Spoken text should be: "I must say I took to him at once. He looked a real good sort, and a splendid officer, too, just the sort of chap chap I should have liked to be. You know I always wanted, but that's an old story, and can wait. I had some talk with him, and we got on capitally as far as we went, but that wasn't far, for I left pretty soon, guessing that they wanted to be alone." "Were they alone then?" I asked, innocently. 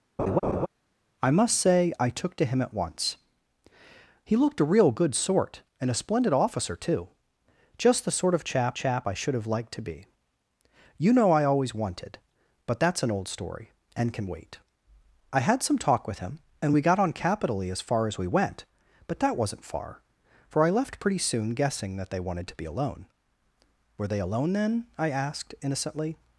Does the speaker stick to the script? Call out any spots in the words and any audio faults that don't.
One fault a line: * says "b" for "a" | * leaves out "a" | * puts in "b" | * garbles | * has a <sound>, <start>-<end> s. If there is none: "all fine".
* has a laugh, 0.2-0.7 s